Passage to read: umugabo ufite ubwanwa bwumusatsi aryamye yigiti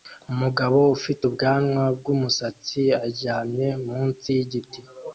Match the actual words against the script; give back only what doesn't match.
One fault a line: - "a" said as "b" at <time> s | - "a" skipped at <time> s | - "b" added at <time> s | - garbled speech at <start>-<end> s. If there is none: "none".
- "munsi" added at 3.9 s